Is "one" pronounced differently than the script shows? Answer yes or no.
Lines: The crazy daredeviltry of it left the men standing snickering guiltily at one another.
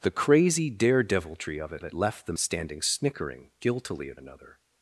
yes